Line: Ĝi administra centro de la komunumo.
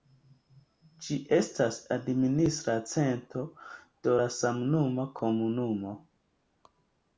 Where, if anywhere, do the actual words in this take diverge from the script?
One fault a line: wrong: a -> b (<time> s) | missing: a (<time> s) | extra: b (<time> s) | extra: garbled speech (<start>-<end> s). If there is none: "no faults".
extra: estas (1.4 s)
extra: samnoma (4.4 s)